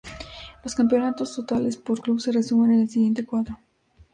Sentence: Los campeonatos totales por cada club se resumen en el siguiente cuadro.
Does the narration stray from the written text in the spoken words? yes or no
yes